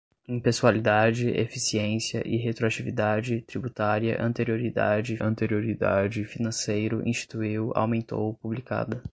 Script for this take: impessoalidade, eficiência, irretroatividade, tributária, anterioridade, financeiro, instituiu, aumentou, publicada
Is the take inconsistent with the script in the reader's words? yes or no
yes